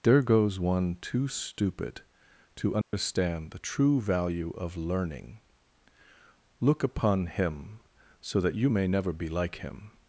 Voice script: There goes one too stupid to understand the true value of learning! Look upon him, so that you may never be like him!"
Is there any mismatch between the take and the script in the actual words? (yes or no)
no